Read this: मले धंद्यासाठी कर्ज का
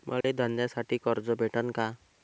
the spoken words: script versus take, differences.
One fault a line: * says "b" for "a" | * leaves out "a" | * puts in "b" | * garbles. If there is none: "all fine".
* puts in "भेटन"